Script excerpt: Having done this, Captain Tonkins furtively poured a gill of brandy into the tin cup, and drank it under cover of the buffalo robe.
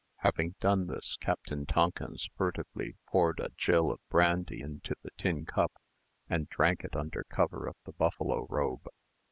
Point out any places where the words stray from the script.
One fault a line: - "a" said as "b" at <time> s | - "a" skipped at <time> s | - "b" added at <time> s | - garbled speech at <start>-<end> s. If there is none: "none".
none